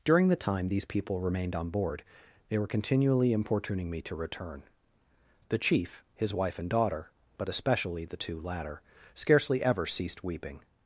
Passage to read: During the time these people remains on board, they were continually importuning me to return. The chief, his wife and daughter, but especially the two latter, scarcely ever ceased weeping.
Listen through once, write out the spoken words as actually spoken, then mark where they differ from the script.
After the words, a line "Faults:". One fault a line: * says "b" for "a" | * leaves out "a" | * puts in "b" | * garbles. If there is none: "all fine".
During the time these people remained on board, they were continually importuning me to return. The chief, his wife and daughter, but especially the two latter, scarcely ever ceased weeping.
Faults:
* says "remained" for "remains"